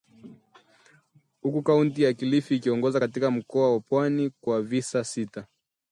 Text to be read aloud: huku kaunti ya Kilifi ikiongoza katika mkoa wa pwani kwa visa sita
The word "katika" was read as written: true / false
true